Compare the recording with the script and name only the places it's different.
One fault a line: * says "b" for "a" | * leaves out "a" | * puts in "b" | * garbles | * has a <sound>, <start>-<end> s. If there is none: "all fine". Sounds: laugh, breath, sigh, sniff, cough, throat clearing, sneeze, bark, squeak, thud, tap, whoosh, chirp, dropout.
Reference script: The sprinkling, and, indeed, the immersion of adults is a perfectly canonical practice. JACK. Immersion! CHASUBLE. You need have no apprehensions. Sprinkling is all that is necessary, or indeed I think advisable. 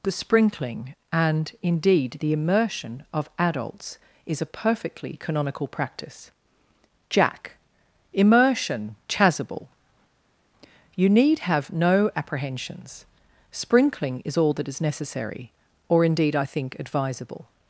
all fine